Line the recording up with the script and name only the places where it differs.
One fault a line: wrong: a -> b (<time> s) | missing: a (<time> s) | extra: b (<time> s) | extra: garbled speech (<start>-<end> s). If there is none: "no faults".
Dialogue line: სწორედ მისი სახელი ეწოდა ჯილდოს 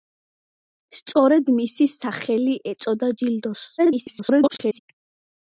extra: garbled speech (3.8-4.8 s)